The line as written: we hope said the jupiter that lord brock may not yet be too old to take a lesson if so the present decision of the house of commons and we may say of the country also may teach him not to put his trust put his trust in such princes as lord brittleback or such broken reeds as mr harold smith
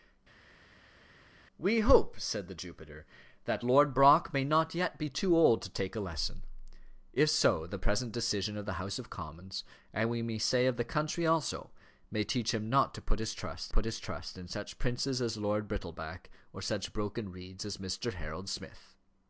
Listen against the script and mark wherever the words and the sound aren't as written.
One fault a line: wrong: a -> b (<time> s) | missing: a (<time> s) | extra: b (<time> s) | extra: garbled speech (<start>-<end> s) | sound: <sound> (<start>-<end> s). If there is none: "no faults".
no faults